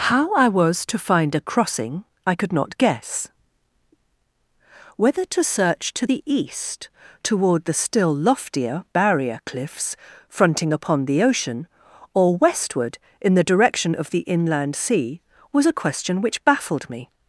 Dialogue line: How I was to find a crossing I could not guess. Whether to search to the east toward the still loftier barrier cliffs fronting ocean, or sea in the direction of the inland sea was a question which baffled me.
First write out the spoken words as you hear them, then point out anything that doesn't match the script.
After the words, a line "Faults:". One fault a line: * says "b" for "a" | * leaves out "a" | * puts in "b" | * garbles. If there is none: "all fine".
How I was to find a crossing I could not guess. Whether to search to the east toward the still loftier barrier cliffs fronting upon the ocean, or westward in the direction of the inland sea was a question which baffled me.
Faults:
* puts in "upon the"
* says "westward" for "sea"